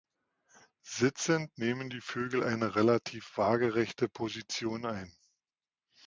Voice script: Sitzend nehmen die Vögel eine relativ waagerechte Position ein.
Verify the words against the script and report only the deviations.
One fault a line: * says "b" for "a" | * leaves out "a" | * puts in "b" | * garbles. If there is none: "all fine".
all fine